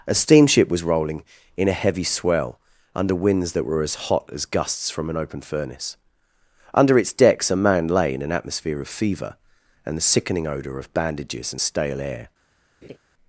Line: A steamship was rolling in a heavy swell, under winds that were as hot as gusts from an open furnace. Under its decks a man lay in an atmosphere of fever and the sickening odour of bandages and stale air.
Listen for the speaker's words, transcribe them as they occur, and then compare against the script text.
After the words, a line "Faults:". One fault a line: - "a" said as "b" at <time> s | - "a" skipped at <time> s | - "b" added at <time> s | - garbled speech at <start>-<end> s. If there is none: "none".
A steamship was rolling in a heavy swell, under winds that were as hot as gusts from an open furnace. Under its decks a man lay in an atmosphere of fever and the sickening odour of bandages and stale air.
Faults:
none